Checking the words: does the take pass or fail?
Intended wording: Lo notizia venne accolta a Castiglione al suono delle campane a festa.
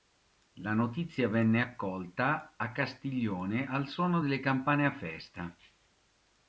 fail